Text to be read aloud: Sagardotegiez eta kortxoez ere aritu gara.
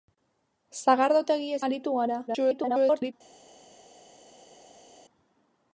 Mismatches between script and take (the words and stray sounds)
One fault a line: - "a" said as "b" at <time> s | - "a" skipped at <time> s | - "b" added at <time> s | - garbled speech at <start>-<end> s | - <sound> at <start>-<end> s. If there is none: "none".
- "eta kortxoez ere" skipped at 1.6 s
- garbled speech at 2.3-3.1 s